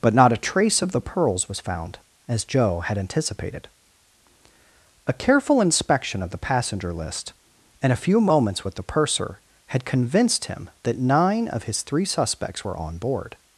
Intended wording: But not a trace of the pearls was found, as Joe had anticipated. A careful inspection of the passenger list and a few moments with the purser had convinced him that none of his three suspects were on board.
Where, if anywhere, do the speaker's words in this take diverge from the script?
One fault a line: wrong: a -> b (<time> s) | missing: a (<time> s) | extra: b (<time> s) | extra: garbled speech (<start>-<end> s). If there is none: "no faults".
wrong: none -> nine (11.0 s)